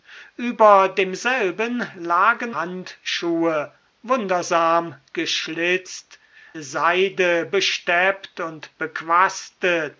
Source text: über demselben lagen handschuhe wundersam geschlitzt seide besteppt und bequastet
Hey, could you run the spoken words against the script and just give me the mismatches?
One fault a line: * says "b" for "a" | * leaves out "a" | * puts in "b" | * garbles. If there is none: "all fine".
all fine